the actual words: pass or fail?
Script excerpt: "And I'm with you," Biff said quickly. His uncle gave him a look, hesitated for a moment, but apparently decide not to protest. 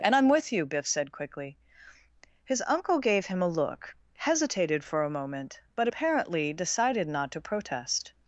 fail